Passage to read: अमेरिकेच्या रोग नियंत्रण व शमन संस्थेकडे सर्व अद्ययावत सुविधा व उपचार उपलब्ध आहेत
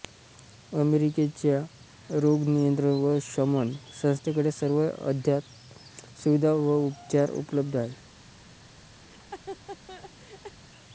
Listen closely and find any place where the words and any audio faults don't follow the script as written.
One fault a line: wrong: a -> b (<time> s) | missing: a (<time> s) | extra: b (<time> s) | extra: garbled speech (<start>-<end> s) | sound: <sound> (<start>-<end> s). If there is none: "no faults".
sound: laugh (9.0-10.6 s)